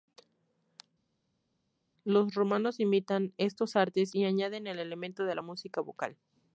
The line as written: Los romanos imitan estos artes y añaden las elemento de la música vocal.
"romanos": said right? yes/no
yes